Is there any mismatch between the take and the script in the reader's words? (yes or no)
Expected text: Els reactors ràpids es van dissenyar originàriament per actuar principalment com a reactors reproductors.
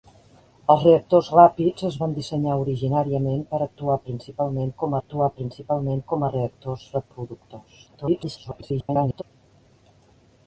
yes